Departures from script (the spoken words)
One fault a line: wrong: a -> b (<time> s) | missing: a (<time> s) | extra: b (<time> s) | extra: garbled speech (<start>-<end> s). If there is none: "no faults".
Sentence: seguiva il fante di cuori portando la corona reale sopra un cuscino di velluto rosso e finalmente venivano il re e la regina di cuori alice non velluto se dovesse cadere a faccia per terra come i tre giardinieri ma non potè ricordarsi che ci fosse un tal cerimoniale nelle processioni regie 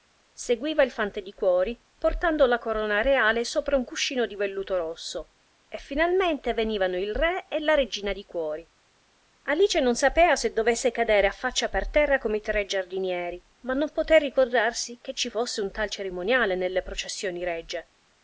wrong: velluto -> sapea (10.0 s)